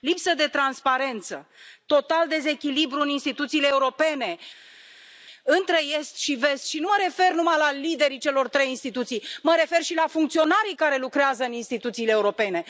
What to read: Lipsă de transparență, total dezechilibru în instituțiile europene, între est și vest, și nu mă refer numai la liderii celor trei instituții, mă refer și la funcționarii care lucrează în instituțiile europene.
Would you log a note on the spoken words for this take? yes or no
no